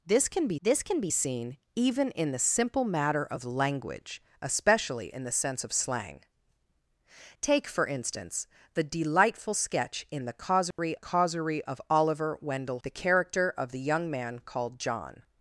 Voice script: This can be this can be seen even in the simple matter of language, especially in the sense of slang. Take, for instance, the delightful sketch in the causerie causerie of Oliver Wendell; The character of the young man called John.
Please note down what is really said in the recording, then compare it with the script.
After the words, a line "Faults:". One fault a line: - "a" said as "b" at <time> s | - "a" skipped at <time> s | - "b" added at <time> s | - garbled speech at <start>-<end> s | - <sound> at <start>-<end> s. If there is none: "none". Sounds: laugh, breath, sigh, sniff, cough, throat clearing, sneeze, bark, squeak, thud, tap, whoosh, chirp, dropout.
This can be this can be seen even in the simple matter of language, especially in the sense of slang. Take, for instance, the delightful sketch in the causerie causerie of Oliver Wendell; The character of the young man called John.
Faults:
- dropout at 10.7-10.8 s